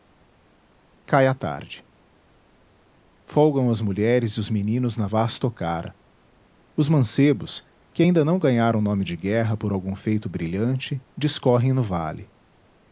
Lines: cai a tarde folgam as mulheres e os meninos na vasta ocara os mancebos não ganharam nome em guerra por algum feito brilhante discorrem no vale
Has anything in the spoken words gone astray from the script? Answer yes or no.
yes